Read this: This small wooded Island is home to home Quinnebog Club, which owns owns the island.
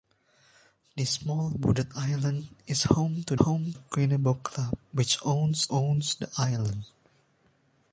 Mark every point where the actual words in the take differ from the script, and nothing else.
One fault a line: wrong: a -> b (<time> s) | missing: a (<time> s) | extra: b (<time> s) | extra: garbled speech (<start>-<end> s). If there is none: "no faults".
no faults